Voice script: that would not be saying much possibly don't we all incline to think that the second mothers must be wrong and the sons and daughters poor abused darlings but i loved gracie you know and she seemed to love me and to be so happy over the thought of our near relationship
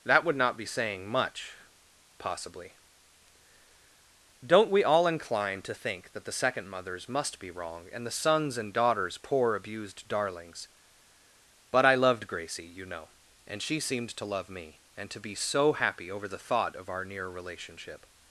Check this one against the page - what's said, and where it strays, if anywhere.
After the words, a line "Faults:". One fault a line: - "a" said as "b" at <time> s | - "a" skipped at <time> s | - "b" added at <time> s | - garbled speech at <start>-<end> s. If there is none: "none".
that would not be saying much possibly don't we all incline to think that the second mothers must be wrong and the sons and daughters poor abused darlings but i loved gracie you know and she seemed to love me and to be so happy over the thought of our near relationship
Faults:
none